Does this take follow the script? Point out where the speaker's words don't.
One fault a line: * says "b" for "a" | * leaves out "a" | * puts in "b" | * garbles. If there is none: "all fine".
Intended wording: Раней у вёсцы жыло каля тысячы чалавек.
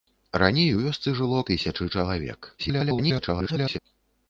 * leaves out "каля"
* garbles